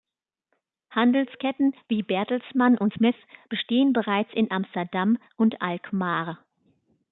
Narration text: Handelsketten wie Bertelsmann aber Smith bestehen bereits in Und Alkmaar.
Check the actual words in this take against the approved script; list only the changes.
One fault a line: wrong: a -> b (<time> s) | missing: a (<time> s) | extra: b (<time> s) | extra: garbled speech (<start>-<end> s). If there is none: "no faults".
wrong: aber -> und (2.8 s)
extra: Amsterdam (4.5 s)